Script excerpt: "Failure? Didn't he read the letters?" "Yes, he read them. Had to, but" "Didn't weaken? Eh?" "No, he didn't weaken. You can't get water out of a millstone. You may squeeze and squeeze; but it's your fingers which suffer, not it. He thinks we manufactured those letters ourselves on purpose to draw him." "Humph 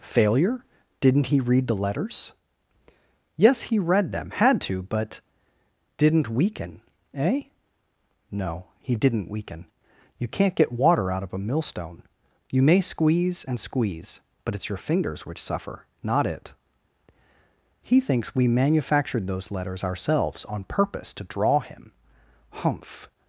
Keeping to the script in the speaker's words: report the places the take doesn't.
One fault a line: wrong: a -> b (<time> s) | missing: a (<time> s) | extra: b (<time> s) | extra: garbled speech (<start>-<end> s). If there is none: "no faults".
no faults